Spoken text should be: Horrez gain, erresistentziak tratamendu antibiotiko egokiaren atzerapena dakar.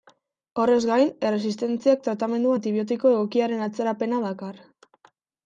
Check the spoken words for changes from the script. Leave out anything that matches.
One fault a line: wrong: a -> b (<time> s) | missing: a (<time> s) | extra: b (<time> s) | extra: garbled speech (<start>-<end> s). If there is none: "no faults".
no faults